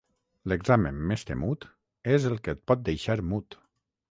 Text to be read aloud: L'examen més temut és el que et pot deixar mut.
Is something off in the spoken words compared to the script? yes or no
no